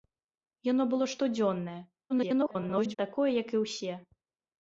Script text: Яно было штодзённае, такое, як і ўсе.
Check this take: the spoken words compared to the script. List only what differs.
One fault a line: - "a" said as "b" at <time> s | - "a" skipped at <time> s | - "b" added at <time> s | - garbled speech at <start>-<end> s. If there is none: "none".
- garbled speech at 2.1-3.0 s